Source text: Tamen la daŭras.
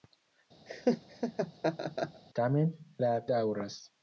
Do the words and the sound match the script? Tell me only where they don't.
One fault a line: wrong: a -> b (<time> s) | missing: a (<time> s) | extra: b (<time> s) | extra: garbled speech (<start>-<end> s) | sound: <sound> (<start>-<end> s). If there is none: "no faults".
sound: laugh (0.7-2.2 s)